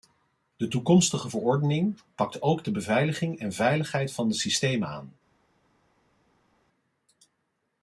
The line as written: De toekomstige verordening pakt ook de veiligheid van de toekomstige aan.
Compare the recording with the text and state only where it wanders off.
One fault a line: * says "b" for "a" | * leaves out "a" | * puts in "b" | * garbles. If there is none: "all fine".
* puts in "beveiliging en"
* says "systemen" for "toekomstige"